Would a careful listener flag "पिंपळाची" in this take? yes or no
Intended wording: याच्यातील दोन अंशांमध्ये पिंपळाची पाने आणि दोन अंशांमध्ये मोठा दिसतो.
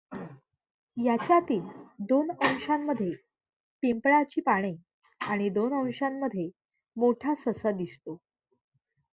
no